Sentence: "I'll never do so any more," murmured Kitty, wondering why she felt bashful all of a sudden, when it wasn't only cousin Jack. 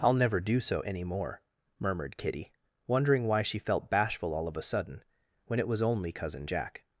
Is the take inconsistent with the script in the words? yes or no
yes